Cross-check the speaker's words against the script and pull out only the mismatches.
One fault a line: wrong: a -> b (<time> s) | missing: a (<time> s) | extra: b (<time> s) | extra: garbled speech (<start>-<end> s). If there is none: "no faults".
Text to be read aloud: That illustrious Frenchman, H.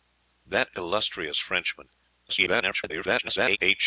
extra: garbled speech (2.3-3.6 s)